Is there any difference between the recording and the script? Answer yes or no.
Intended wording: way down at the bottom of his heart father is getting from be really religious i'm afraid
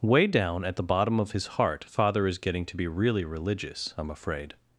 yes